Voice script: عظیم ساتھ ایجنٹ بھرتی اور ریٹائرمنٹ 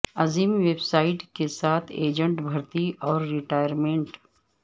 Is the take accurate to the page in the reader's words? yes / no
no